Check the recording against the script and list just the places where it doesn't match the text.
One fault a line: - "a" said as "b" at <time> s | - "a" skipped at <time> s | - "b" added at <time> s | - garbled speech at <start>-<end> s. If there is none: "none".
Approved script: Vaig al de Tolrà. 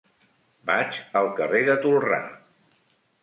- "carrer" added at 1.4 s